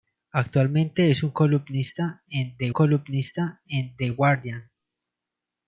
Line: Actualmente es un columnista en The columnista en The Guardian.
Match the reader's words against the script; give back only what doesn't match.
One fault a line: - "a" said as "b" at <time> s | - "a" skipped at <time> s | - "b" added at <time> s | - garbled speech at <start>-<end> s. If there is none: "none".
none